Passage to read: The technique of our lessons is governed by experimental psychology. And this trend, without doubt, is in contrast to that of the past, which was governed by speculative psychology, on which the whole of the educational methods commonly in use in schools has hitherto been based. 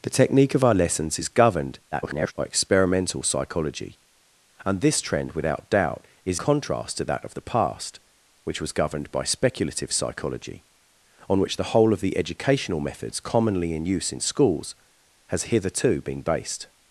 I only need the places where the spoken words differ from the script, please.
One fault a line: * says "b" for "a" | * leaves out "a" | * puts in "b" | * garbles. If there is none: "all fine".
* garbles
* leaves out "in"